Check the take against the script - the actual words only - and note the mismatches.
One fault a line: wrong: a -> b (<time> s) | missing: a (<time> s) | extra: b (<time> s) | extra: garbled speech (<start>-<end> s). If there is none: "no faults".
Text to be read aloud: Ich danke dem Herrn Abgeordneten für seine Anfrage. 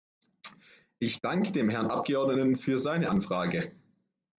no faults